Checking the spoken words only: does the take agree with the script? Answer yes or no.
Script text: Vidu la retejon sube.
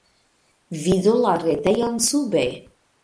yes